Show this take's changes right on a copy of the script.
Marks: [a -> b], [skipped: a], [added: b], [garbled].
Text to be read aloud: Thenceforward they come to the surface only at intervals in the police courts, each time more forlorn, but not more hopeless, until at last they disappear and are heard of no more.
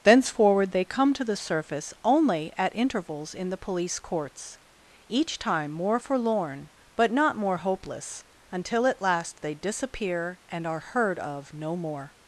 Thenceforward they come to the surface only at intervals in the police courts, each time more forlorn, but not more hopeless, until at last they disappear and are heard of no more.